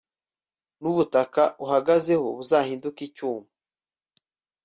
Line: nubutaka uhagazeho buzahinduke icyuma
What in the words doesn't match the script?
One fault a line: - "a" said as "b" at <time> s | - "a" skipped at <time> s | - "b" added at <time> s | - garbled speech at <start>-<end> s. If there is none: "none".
none